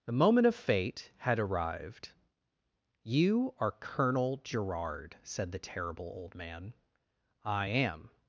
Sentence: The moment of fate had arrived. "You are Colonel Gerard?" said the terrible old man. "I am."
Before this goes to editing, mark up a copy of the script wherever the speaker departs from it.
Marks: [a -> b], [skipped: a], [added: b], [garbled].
The moment of fate had arrived. "You are Colonel Gerard?" said the terrible old man. "I am."